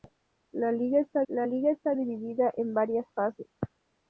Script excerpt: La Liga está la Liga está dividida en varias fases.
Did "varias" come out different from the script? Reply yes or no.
no